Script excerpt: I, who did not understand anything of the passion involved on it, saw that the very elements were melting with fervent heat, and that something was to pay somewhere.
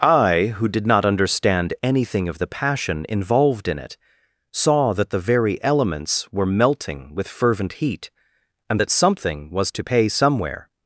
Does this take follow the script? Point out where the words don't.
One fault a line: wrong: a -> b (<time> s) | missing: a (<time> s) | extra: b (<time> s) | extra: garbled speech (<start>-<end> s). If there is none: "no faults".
wrong: on -> in (3.7 s)